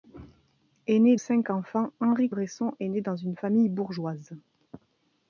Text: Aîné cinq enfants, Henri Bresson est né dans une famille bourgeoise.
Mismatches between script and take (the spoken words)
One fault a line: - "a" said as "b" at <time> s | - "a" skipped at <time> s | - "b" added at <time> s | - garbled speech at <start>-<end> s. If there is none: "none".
none